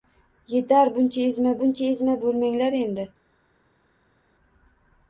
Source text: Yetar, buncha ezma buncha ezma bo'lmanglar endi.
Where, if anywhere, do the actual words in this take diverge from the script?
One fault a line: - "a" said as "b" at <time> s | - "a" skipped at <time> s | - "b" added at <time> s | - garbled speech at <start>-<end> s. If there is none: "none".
none